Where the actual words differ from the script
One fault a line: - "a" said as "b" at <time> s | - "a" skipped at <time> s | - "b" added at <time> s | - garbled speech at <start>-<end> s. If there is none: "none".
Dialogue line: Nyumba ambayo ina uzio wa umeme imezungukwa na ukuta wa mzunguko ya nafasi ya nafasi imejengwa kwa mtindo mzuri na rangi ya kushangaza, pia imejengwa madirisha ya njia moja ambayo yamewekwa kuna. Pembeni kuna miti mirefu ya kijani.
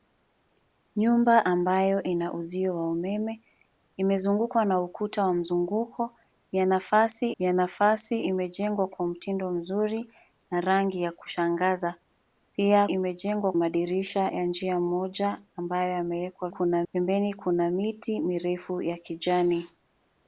none